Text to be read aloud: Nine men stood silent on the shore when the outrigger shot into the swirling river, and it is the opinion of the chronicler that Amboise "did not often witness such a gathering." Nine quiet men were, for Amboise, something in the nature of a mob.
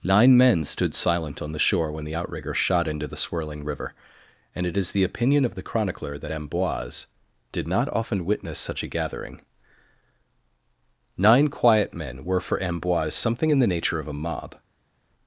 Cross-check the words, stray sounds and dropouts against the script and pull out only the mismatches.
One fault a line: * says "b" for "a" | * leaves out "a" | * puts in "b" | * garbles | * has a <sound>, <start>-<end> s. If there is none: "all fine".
all fine